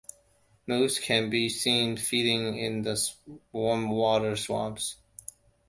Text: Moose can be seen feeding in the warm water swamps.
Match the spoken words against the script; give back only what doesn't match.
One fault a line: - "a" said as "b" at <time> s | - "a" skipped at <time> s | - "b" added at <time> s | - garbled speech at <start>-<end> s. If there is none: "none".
none